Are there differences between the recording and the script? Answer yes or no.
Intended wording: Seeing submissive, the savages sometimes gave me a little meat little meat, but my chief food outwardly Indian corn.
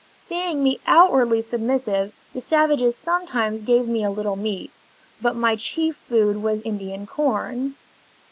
yes